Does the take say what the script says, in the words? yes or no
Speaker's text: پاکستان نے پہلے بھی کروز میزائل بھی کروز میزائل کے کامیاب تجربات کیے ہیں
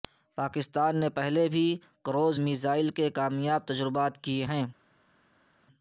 no